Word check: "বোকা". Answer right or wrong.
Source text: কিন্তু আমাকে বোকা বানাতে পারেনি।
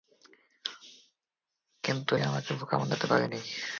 right